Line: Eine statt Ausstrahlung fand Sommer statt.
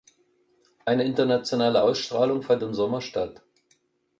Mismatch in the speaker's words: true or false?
true